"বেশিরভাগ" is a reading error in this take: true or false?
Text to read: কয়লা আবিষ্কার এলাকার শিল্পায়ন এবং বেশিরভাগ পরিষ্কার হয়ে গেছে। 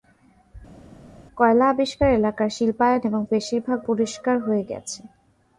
false